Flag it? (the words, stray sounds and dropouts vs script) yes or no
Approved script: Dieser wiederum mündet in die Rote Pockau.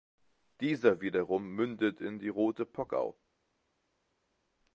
no